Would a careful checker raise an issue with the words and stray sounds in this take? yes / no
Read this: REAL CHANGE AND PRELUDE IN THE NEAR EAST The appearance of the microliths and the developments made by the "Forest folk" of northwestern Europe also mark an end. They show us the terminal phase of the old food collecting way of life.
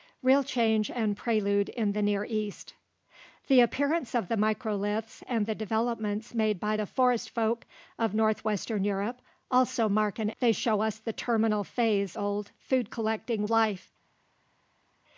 yes